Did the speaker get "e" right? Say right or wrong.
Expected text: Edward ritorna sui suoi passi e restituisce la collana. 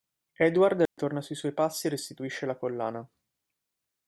right